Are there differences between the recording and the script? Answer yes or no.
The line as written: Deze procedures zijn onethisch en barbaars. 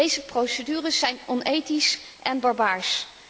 no